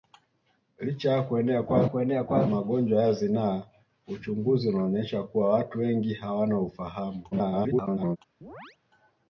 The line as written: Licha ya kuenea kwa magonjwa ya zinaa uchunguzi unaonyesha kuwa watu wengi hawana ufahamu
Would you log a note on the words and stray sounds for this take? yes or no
yes